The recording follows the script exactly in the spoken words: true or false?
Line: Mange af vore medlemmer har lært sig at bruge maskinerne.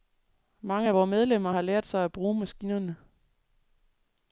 true